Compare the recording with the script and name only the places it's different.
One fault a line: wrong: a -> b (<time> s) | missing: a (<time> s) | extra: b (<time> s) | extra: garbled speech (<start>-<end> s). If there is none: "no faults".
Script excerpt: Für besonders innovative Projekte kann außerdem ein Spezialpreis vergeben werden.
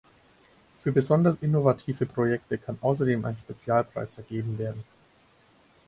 no faults